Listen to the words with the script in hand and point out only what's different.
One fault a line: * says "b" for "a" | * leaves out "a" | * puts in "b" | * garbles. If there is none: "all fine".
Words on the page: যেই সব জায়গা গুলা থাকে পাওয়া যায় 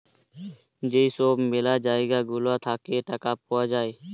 * puts in "ম্যালা"
* puts in "টাকা"